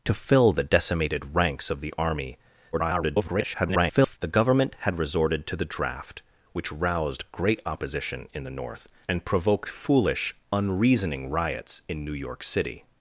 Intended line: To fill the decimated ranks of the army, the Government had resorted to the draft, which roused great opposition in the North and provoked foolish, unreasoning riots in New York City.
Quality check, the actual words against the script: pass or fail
fail